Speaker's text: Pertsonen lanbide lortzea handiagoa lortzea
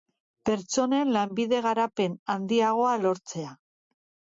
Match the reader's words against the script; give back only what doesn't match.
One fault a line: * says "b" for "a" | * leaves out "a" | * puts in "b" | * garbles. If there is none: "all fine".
* says "garapen" for "lortzea"